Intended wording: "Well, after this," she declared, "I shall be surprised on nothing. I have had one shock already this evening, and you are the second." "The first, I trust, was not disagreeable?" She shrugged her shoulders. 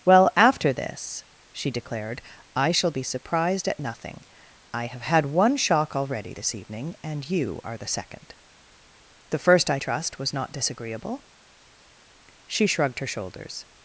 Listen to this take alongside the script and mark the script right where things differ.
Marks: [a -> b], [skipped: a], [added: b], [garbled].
"Well, after this," she declared, "I shall be surprised [on -> at] nothing. I have had one shock already this evening, and you are the second." "The first, I trust, was not disagreeable?" She shrugged her shoulders.